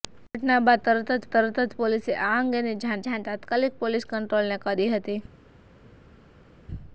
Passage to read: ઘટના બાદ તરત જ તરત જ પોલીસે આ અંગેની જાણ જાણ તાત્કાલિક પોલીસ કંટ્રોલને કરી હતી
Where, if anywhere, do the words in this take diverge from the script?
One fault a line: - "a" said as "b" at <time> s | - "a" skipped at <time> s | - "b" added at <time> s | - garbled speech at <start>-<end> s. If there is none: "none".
none